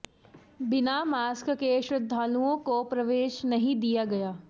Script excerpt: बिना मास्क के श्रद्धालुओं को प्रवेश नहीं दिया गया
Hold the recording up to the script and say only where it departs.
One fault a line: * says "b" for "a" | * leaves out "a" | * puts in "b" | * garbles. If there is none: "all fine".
all fine